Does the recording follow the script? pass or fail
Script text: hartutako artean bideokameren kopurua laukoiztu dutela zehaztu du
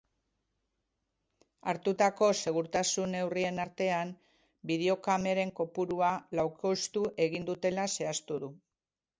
fail